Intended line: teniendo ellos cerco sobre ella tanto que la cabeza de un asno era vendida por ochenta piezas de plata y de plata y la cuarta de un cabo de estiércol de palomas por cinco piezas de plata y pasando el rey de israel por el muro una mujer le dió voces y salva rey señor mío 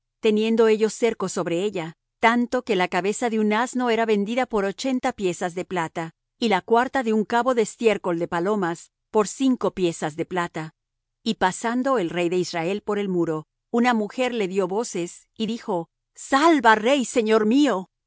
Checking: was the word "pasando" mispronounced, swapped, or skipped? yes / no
no